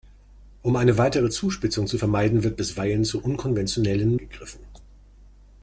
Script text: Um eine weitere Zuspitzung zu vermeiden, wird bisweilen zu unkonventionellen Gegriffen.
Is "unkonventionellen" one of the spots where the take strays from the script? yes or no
no